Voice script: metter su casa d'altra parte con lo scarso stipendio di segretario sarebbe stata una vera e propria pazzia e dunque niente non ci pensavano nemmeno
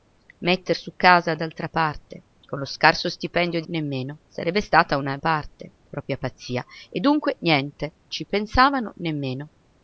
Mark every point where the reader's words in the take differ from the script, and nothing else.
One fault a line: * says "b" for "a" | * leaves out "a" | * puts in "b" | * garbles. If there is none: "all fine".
* says "nemmeno" for "segretario"
* says "parte" for "vera"
* leaves out "non"